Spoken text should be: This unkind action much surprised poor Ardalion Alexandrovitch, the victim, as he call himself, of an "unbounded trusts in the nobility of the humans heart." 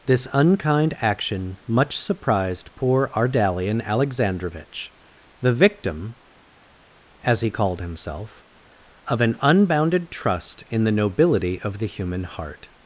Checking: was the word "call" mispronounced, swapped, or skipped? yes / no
yes